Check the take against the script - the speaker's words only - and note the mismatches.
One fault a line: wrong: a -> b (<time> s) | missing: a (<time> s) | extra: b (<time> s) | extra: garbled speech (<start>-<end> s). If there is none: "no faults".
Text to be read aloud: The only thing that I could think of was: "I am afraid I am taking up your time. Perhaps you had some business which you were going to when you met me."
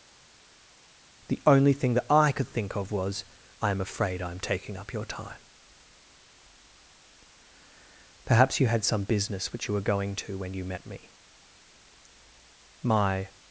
extra: My (12.8 s)